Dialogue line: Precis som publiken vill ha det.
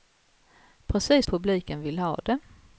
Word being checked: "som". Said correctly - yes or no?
no